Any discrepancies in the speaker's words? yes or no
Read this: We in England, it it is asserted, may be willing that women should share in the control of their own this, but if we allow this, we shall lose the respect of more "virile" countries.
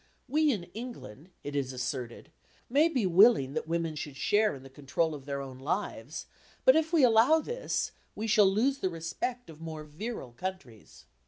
yes